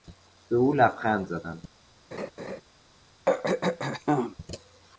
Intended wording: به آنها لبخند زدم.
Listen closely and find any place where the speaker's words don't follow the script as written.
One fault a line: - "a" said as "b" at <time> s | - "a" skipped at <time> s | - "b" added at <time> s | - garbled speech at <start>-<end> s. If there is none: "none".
- "آنها" said as "او" at 0.6 s